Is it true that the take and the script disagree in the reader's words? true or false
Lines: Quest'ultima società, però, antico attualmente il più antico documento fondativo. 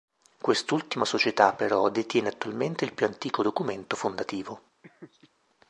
true